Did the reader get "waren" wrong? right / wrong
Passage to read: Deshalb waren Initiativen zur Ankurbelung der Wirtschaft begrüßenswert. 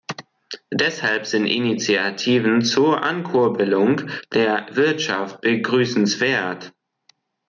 wrong